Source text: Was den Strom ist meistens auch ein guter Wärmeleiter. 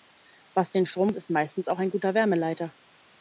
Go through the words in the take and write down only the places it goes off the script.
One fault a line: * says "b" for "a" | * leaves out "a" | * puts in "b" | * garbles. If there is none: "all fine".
all fine